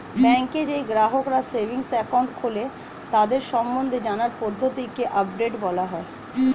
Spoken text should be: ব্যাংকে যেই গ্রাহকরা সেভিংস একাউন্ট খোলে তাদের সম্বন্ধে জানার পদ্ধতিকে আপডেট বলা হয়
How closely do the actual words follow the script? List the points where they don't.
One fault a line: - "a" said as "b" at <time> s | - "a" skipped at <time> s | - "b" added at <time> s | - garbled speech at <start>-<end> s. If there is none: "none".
none